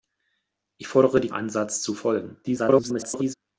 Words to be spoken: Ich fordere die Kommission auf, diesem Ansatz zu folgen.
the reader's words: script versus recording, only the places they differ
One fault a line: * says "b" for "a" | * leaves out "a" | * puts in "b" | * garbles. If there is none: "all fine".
* leaves out "Kommission auf diesem"
* garbles